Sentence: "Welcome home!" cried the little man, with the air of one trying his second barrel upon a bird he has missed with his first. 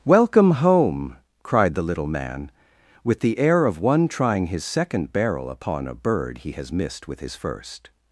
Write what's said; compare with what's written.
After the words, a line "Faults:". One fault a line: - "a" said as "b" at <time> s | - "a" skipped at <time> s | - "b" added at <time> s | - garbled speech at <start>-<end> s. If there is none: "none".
"Welcome home!" cried the little man, with the air of one trying his second barrel upon a bird he has missed with his first.
Faults:
none